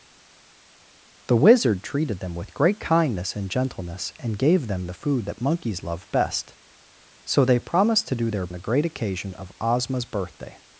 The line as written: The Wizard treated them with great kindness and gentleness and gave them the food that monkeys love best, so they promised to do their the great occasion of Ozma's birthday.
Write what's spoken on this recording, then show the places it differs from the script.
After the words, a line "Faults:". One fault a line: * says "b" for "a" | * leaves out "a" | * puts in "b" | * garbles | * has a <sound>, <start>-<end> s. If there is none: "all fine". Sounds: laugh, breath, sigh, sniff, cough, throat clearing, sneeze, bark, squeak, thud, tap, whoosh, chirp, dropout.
The Wizard treated them with great kindness and gentleness and gave them the food that monkeys love best, so they promised to do their the great occasion of Ozma's birthday.
Faults:
all fine